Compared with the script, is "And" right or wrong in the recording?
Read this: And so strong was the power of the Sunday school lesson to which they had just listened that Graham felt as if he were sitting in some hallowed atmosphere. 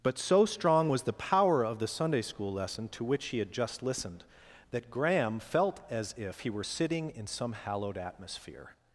wrong